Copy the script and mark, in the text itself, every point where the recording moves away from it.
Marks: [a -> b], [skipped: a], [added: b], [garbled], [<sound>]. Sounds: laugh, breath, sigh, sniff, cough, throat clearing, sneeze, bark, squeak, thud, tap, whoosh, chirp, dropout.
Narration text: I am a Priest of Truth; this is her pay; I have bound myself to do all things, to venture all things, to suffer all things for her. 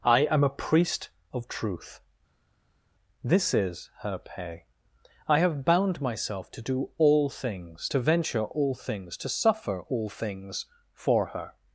I am a Priest of Truth; this is her pay; I have bound myself to do all things, to venture all things, to suffer all things for her.